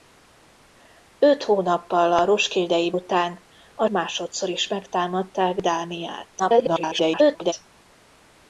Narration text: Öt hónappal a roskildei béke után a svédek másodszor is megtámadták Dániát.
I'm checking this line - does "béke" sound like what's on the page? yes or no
no